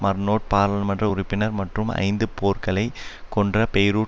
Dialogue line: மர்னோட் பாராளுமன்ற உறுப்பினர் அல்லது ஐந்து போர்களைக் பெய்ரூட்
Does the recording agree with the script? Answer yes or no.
no